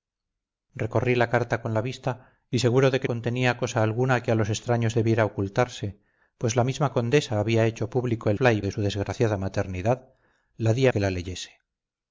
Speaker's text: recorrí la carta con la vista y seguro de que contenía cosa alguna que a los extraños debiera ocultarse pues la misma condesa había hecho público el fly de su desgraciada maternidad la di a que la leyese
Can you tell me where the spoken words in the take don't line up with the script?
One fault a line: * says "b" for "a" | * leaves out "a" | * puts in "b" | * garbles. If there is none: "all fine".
all fine